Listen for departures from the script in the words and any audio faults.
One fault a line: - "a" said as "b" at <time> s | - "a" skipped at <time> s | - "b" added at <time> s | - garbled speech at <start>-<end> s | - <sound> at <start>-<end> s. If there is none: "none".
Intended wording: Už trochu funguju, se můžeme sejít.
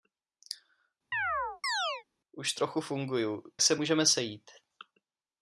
- chirp at 1.1-2.0 s